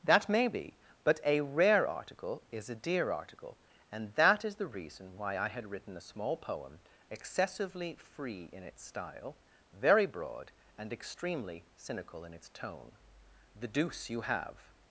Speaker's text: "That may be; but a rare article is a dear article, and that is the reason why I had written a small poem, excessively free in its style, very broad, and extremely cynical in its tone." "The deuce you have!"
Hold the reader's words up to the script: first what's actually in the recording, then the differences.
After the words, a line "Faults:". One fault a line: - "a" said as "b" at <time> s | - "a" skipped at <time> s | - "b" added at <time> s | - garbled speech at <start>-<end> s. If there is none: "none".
"That may be; but a rare article is a dear article, and that is the reason why I had written a small poem, excessively free in its style, very broad, and extremely cynical in its tone." "The deuce you have!"
Faults:
none